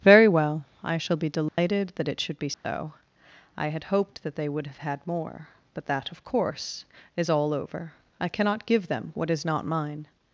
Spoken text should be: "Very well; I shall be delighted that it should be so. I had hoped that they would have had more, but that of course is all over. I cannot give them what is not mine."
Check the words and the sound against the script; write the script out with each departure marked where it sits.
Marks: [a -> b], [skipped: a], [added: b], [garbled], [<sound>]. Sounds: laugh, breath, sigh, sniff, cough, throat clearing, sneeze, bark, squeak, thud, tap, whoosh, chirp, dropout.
"Very well; I shall be delighted [dropout] that it should be so. [dropout] I had hoped that they would have had more, but that of course is all over. I cannot give them what is not mine."